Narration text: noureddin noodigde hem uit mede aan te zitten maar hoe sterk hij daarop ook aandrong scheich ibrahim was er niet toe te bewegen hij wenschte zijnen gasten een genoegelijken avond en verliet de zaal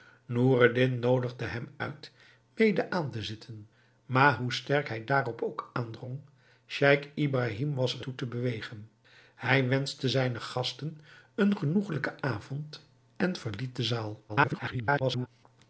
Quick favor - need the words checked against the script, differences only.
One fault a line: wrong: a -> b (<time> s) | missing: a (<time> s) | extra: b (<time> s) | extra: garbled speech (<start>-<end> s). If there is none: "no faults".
missing: niet (8.1 s)
extra: garbled speech (14.3-15.3 s)